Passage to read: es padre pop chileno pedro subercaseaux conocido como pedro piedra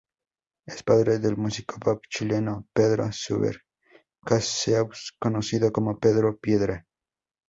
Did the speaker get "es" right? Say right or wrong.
right